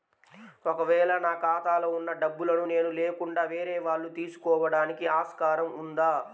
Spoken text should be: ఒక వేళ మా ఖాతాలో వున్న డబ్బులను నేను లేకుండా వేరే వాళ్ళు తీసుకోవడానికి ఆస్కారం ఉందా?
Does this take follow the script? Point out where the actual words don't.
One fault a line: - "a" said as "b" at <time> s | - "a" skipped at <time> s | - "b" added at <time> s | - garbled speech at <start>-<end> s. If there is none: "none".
- "మా" said as "నా" at 1.2 s